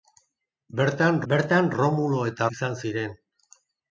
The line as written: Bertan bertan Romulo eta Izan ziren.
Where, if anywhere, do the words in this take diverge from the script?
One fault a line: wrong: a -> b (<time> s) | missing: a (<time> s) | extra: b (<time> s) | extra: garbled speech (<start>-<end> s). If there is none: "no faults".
no faults